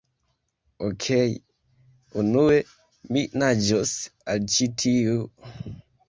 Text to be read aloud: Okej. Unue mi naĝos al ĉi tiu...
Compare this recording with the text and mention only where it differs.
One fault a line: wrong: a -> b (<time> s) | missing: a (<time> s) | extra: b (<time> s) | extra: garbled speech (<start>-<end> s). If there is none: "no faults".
no faults